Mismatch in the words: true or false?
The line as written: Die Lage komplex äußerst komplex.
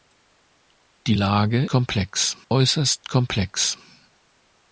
false